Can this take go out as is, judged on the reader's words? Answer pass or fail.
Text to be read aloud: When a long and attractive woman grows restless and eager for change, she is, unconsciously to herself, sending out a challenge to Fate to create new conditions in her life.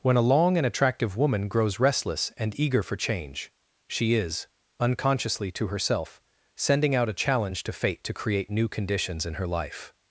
pass